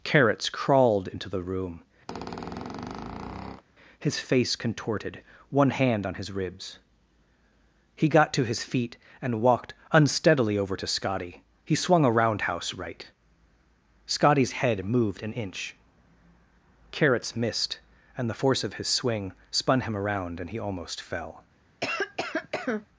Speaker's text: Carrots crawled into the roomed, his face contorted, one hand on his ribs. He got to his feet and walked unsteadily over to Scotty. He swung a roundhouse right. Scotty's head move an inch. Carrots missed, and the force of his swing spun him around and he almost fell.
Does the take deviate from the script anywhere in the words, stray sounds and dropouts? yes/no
yes